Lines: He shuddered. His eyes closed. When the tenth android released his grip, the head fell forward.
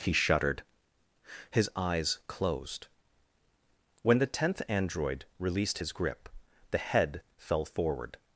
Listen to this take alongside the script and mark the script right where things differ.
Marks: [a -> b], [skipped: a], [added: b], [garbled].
He shuddered. His eyes closed. When the tenth android released his grip, the head fell forward.